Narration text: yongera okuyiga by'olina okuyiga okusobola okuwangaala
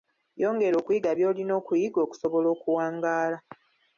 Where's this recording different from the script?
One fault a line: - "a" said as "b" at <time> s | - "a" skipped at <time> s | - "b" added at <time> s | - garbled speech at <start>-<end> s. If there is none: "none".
none